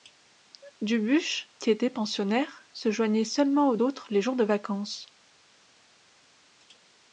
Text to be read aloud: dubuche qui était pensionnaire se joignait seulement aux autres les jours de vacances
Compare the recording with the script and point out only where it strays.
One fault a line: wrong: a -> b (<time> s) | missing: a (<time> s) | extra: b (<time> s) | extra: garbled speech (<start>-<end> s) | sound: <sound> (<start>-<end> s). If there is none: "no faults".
no faults